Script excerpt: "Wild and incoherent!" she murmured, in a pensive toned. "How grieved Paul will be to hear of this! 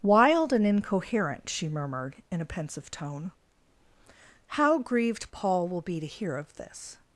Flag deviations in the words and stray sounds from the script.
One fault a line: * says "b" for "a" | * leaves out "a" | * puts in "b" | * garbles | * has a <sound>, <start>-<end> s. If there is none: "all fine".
* says "tone" for "toned"